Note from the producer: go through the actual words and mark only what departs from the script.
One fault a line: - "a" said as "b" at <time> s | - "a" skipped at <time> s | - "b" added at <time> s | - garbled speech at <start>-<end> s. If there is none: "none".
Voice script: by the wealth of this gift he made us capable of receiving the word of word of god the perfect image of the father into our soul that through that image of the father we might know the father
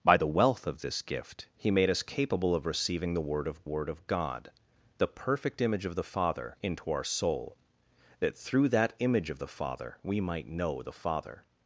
none